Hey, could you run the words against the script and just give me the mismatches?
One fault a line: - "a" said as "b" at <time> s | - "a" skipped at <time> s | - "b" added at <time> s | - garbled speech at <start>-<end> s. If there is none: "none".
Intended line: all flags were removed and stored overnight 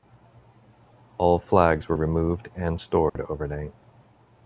none